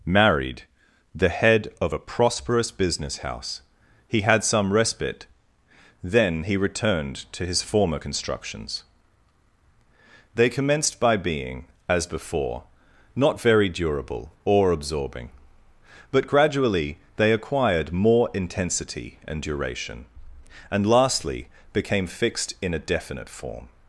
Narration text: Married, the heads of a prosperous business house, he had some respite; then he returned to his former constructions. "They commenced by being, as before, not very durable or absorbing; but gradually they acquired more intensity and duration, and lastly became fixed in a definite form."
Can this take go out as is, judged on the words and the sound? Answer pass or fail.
fail